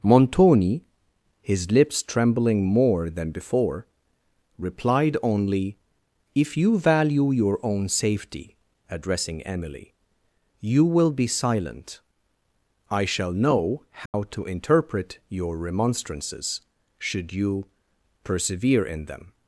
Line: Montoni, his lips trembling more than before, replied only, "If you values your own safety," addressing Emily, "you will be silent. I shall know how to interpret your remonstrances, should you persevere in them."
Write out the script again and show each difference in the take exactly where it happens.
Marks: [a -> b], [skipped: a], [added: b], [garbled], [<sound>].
Montoni, his lips trembling more than before, replied only, "If you [values -> value] your own safety," addressing Emily, "you will be silent. I shall know how [dropout] to interpret your remonstrances, should you persevere in them."